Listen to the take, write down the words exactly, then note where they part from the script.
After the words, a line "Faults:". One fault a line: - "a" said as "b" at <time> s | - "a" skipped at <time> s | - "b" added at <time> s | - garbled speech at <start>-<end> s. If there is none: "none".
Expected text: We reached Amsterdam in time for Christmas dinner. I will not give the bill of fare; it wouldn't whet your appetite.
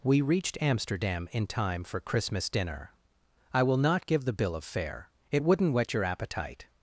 We reached Amsterdam in time for Christmas dinner. I will not give the bill of fare; it wouldn't whet your appetite.
Faults:
none